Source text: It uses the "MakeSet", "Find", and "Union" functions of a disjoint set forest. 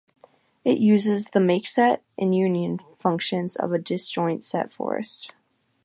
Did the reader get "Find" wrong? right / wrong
wrong